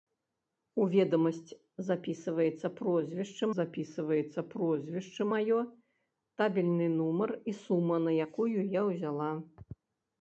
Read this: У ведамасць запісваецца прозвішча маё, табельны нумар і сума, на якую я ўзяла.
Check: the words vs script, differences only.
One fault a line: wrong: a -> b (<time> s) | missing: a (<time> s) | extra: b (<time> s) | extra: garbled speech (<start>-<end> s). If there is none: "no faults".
extra: запісваецца прозвішча (3.6 s)